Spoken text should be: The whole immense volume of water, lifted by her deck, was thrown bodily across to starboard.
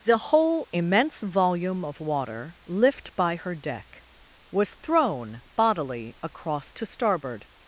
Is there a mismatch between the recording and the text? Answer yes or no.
yes